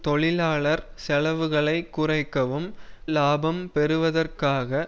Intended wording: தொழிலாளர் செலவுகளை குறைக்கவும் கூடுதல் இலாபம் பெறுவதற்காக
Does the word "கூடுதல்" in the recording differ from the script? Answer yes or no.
yes